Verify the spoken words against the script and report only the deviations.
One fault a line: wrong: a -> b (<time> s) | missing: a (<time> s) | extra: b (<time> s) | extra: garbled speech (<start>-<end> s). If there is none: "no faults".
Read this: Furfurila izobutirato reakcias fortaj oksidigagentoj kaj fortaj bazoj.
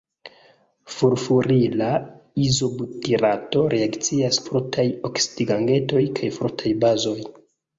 no faults